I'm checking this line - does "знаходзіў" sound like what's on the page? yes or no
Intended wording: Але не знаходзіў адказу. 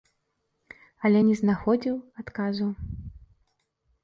yes